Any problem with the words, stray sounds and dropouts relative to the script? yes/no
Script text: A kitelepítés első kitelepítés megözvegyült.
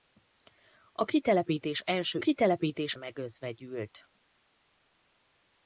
no